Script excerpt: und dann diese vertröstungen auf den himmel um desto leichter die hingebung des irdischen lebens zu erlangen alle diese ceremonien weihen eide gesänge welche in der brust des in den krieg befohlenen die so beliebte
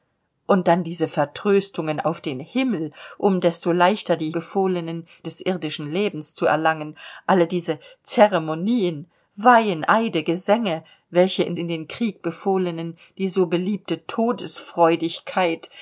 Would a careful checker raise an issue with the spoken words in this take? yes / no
yes